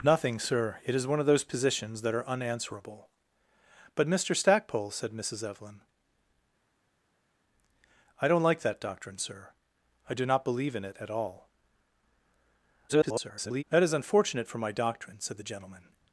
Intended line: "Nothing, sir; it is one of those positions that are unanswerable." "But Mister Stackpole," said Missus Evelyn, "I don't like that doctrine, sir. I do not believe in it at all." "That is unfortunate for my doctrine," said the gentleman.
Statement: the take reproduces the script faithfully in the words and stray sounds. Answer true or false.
false